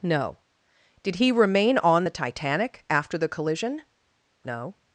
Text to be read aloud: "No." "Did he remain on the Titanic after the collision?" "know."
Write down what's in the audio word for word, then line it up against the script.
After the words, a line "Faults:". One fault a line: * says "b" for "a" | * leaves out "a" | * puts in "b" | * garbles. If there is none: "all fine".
"No." "Did he remain on the Titanic after the collision?" "know."
Faults:
all fine